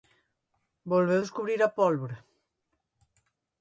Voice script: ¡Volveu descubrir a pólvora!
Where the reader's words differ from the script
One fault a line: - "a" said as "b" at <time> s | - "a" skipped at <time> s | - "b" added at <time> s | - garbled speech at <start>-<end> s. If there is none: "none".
none